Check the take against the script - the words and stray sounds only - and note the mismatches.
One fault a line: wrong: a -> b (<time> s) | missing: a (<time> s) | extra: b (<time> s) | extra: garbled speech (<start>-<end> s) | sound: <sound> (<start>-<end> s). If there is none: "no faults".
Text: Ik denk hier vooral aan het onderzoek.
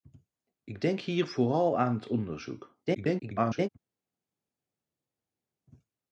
extra: garbled speech (2.9-3.7 s)